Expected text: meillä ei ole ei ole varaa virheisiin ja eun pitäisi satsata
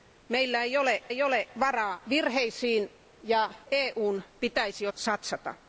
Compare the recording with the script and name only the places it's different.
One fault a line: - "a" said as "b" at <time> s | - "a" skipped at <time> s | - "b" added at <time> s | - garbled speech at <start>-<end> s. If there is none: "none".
none